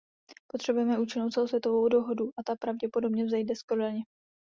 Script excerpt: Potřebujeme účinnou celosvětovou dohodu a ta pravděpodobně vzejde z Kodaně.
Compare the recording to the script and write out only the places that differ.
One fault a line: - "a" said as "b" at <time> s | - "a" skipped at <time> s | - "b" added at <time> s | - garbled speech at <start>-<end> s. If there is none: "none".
none